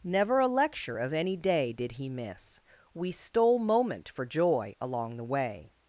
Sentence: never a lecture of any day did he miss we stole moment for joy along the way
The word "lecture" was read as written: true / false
true